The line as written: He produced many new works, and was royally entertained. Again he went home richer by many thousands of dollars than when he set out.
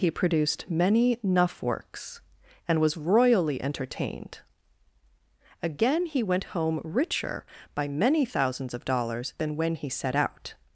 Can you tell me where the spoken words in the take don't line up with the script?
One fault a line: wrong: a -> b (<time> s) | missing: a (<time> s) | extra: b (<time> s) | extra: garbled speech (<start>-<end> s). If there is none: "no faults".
wrong: new -> nuff (1.2 s)